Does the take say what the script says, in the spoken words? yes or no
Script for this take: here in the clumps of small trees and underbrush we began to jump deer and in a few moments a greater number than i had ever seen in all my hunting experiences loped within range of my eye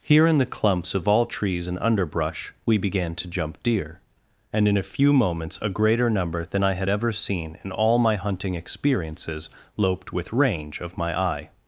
no